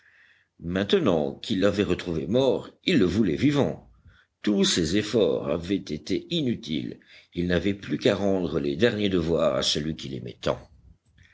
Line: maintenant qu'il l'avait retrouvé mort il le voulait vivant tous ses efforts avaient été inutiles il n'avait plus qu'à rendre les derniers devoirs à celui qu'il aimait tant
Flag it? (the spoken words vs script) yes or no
no